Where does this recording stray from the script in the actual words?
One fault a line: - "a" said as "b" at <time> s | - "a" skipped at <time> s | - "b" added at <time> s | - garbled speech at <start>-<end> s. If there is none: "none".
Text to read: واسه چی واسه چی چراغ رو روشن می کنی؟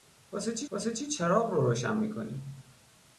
none